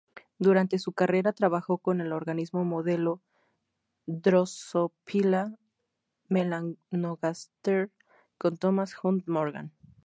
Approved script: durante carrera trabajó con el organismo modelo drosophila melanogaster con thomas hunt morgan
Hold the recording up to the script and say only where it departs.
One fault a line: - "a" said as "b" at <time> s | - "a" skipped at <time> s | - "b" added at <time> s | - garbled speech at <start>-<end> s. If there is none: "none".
- "su" added at 0.8 s